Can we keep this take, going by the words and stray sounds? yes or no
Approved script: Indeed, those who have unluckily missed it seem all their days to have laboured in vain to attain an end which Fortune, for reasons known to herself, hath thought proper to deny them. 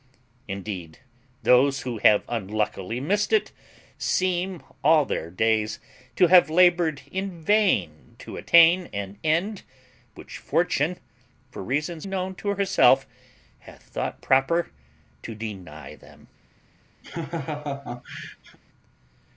no